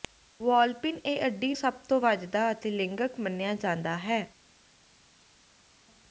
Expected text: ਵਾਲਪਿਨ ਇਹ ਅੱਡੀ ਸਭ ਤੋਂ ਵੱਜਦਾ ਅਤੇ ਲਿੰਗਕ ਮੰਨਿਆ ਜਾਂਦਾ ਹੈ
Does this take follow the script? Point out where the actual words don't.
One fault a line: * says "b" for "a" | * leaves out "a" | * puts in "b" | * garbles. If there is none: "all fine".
all fine